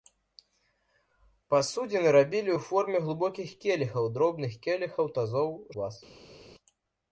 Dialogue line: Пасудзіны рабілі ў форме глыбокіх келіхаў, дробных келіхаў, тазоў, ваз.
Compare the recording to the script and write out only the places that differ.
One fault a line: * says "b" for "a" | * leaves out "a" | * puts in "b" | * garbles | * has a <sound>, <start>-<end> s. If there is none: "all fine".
all fine